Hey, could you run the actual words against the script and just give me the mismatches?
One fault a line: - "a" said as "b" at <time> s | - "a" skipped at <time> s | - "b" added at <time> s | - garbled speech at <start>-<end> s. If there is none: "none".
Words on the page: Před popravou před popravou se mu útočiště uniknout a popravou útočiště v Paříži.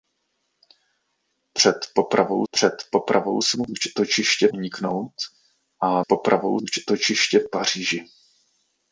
none